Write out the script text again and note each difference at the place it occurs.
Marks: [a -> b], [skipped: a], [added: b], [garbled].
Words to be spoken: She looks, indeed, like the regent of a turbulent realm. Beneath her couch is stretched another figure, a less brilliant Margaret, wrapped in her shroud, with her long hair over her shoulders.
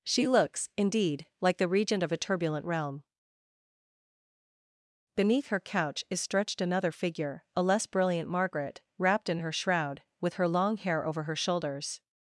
She looks, indeed, like the regent of a turbulent realm. Beneath her couch is stretched another figure, a less brilliant Margaret, wrapped in her shroud, with her long hair over her shoulders.